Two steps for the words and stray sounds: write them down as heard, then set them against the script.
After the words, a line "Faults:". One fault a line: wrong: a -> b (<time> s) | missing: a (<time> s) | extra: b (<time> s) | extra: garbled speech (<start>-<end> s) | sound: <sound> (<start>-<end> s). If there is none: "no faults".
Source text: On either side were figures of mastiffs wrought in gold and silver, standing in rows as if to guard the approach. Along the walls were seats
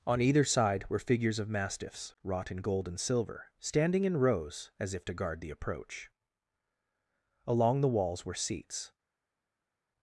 On either side were figures of mastiffs wrought in gold and silver, standing in rows as if to guard the approach. Along the walls were seats
Faults:
no faults